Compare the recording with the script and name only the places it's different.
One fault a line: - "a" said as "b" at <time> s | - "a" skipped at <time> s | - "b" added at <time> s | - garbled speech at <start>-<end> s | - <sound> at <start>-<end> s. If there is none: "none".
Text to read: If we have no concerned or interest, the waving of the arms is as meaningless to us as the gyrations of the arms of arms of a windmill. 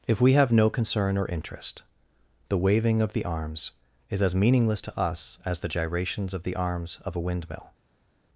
- "concerned" said as "concern" at 0.7 s
- "arms of" skipped at 7.2 s